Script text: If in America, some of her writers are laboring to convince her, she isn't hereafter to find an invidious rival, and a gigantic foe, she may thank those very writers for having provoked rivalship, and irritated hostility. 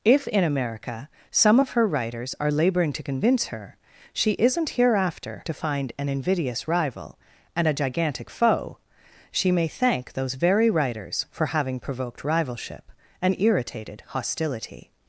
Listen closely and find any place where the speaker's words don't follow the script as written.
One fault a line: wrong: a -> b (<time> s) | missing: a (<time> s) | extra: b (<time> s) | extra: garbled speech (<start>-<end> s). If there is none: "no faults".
no faults